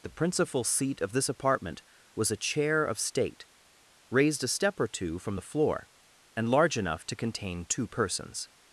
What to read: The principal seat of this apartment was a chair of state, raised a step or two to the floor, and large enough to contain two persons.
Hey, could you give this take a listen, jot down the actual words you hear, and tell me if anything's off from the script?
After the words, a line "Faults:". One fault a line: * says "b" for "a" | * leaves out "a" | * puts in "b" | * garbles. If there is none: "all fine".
The principal seat of this apartment was a chair of state, raised a step or two from the floor, and large enough to contain two persons.
Faults:
* says "from" for "to"